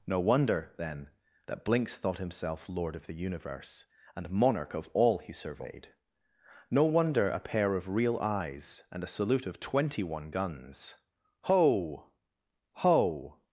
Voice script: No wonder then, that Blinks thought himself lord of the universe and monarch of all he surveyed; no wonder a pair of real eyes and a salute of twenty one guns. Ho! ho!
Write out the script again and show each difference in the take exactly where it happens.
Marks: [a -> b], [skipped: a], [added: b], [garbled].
No wonder then, that Blinks thought himself lord of the universe and monarch of all he surveyed; no wonder a pair of real eyes and a salute of twenty one guns. Ho! ho!